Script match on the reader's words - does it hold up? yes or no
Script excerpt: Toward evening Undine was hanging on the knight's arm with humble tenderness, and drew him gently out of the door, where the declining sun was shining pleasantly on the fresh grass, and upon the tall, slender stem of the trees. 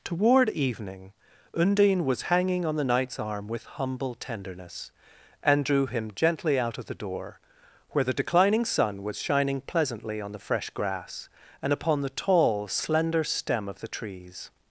yes